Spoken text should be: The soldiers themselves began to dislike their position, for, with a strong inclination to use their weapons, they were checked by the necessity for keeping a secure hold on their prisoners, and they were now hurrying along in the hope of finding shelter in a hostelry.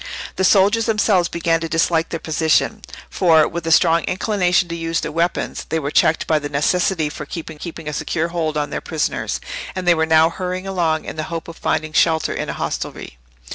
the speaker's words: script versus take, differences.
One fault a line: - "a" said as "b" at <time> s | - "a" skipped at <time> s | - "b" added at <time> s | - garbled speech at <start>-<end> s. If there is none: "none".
- "keeping" added at 7.6 s